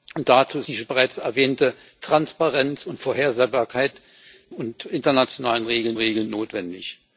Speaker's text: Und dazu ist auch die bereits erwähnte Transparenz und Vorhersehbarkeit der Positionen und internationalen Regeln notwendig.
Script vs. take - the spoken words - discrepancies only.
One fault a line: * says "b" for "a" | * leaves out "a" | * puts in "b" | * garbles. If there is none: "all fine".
* leaves out "auch"
* leaves out "der Positionen"
* puts in "Regeln"